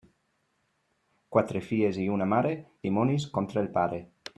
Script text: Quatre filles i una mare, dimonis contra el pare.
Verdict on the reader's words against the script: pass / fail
pass